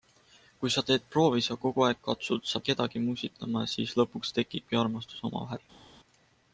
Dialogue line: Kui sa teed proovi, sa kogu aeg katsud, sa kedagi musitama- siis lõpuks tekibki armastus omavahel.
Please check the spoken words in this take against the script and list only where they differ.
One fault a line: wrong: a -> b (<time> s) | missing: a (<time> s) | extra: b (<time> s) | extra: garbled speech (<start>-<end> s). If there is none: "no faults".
no faults